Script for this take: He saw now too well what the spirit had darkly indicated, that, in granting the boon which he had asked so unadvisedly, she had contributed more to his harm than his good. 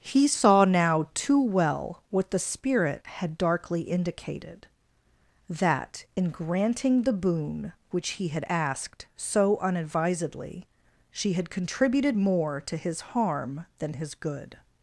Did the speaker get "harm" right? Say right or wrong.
right